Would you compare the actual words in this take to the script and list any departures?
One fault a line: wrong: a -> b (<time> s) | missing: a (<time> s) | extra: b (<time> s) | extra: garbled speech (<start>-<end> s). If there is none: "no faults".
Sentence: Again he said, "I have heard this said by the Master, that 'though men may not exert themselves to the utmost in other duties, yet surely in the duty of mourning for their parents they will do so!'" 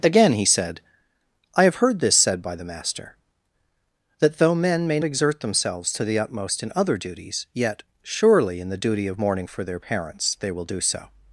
missing: not (5.0 s)